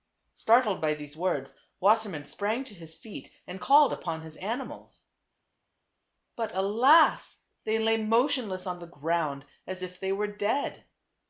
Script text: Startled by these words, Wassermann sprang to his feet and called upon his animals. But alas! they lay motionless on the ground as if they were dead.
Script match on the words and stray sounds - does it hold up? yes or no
yes